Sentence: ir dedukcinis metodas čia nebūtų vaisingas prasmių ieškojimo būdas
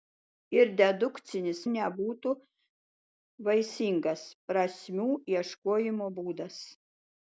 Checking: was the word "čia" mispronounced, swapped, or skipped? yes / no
yes